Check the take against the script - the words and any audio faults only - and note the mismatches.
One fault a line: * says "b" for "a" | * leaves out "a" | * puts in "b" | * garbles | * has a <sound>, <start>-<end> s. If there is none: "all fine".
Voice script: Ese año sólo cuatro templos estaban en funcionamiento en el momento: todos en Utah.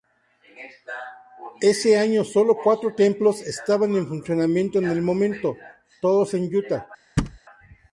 * has a thud, 7.2-7.4 s